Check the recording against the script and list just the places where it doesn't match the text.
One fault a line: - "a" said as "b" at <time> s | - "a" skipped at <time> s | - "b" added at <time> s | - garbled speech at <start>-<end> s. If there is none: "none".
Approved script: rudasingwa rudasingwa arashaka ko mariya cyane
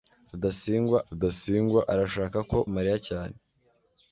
none